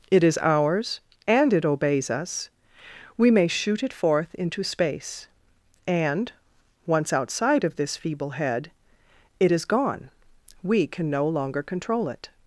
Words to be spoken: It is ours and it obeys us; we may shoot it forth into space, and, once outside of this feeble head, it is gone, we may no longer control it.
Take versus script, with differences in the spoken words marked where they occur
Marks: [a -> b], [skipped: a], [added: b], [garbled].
It is ours and it obeys us; we may shoot it forth into space, and, once outside of this feeble head, it is gone, we [may -> can] no longer control it.